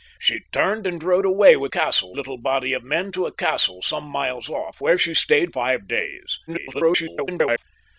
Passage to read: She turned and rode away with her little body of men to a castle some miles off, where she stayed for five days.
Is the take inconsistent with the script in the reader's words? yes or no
yes